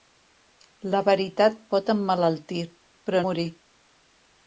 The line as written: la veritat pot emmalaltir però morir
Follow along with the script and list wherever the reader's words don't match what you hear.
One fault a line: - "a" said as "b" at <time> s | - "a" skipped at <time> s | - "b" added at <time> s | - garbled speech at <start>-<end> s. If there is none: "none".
none